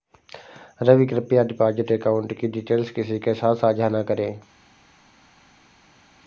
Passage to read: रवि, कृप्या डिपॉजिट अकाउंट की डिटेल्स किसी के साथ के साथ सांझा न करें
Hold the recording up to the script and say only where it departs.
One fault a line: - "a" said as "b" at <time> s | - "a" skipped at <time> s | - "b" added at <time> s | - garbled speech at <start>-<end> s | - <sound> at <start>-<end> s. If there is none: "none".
- "के साथ" skipped at 3.5 s